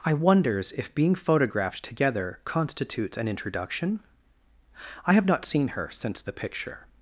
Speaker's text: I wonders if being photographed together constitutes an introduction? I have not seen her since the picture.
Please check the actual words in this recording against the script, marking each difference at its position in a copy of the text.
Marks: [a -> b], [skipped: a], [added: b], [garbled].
I wonders if being photographed together constitutes an introduction? I have not seen her since the picture.